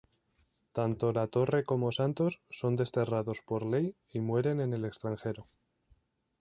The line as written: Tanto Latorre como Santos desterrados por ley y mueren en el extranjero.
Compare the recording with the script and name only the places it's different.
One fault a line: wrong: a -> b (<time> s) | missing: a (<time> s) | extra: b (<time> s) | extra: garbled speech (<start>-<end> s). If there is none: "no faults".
extra: son (2.5 s)